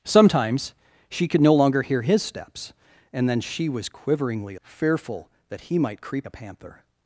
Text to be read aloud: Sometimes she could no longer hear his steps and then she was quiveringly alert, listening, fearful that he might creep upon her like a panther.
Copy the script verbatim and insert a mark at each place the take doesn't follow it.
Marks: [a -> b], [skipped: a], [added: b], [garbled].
Sometimes she could no longer hear his steps and then she was quiveringly [skipped: alert, listening,] fearful that he might creep [skipped: upon her like] a panther.